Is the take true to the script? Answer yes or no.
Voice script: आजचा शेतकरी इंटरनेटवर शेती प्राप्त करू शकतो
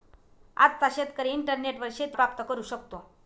yes